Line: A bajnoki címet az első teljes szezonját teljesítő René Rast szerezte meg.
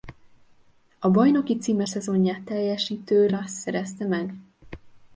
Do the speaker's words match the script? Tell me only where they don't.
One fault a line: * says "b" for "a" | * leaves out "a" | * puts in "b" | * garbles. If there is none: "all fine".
* leaves out "az első teljes"
* leaves out "René"